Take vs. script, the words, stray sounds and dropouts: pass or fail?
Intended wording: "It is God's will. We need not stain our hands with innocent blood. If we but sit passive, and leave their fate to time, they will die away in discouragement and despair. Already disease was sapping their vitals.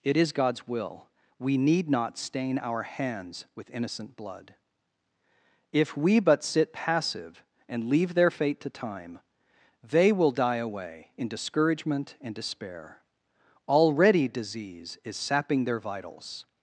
fail